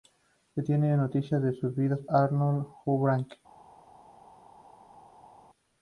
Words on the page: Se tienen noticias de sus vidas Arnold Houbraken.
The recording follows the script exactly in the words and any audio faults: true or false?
true